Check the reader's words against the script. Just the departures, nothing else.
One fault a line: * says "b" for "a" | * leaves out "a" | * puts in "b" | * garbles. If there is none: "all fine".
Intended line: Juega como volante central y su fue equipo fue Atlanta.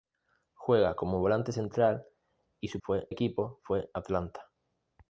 all fine